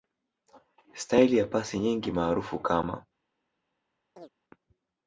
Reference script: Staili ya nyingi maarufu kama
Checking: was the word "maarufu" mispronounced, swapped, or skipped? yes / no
no